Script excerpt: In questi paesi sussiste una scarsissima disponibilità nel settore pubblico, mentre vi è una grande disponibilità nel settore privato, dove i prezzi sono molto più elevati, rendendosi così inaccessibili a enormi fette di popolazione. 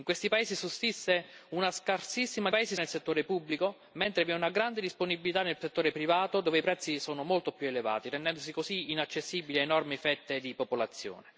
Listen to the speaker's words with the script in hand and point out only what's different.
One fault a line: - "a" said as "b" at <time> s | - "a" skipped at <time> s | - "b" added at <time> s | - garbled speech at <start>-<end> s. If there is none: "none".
- "disponibilità" said as "paesi" at 2.5 s